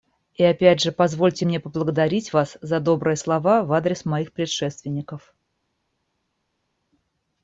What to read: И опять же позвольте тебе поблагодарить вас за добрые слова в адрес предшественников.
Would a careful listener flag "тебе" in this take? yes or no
yes